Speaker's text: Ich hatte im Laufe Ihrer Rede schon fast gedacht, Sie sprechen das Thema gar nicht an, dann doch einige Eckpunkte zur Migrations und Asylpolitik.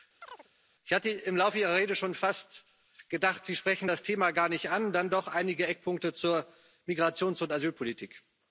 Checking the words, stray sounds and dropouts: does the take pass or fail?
fail